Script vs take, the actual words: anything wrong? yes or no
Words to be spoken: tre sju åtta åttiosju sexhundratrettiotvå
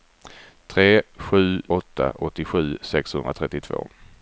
no